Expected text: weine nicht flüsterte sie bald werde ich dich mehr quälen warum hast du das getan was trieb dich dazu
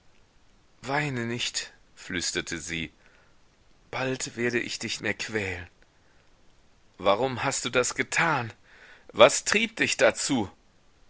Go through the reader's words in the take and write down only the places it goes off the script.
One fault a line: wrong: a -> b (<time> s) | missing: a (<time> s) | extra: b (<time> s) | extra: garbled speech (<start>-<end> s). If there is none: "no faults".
no faults